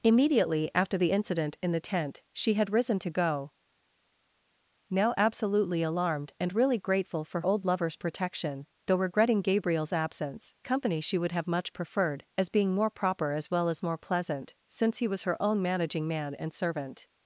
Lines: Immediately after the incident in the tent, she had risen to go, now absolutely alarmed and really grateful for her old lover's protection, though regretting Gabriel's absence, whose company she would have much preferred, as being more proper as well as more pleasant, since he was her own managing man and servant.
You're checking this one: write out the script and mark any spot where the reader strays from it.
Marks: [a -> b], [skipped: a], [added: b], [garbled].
Immediately after the incident in the tent, she had risen to go, now absolutely alarmed and really grateful for [skipped: her] old lover's protection, though regretting Gabriel's absence, [skipped: whose] company she would have much preferred, as being more proper as well as more pleasant, since he was her own managing man and servant.